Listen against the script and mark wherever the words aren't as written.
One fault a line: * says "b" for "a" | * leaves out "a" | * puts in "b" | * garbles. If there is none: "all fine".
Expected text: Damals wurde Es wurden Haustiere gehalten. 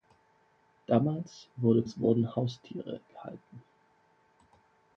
all fine